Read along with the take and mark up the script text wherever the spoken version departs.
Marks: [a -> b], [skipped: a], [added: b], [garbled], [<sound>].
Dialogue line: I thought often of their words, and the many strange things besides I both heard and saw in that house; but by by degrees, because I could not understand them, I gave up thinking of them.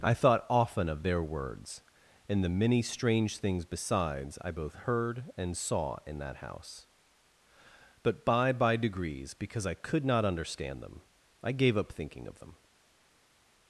I thought often of their words, and the many strange things besides I both heard and saw in that house; but by by degrees, because I could not understand them, I gave up thinking of them.